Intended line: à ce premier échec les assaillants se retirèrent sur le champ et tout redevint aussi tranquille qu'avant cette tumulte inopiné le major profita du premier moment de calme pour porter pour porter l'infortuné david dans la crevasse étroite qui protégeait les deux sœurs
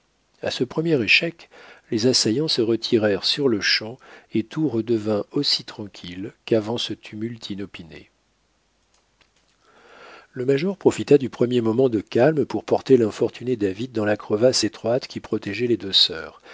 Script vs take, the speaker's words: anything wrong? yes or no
yes